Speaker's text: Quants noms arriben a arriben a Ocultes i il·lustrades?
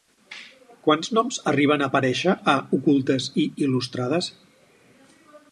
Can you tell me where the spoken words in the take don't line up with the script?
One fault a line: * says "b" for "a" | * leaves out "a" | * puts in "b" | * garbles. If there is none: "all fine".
* says "aparèixer" for "arriben"